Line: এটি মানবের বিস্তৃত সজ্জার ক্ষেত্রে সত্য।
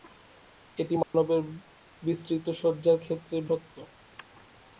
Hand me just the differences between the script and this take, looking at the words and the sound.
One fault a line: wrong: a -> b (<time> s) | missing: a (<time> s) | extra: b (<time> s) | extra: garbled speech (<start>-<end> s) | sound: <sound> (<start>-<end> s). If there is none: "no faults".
sound: dropout (1.0-1.1 s)